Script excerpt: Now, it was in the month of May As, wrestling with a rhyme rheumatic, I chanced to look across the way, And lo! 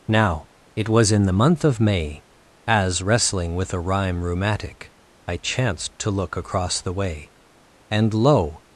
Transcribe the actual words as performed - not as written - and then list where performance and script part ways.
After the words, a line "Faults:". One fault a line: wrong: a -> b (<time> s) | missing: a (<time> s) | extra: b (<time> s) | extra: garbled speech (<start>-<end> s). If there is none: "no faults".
Now, it was in the month of May As, wrestling with a rhyme rheumatic, I chanced to look across the way, And lo!
Faults:
no faults